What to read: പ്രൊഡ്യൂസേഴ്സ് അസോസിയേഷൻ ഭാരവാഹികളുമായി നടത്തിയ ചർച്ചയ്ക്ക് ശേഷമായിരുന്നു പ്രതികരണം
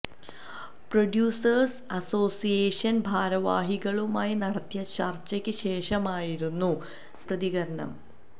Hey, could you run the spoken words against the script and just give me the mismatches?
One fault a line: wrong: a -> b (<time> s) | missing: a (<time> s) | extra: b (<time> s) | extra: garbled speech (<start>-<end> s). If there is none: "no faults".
no faults